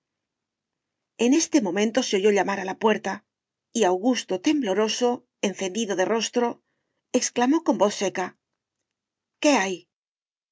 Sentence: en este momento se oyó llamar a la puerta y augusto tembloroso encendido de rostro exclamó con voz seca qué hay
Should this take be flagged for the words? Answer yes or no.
no